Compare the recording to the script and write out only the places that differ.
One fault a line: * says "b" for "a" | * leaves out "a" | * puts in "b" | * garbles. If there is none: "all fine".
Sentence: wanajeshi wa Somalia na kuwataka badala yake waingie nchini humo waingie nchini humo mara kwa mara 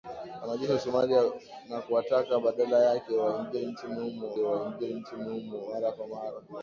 all fine